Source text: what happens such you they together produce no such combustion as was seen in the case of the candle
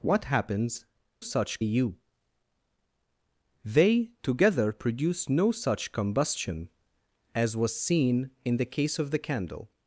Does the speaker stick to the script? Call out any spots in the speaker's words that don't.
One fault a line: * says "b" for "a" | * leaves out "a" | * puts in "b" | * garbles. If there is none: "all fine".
all fine